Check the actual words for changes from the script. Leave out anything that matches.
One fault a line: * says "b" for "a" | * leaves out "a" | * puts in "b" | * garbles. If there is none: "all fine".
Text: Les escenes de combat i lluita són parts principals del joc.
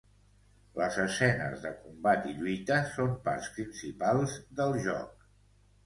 all fine